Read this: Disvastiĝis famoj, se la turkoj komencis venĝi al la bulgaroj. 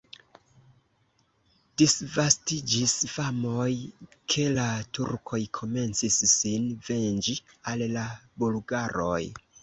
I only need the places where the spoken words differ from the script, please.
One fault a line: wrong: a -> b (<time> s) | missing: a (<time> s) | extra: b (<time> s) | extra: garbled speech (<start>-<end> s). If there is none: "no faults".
wrong: se -> ke (4.3 s)
extra: sin (6.4 s)